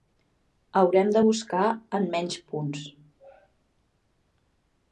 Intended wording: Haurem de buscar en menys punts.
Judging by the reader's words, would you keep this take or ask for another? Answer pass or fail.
pass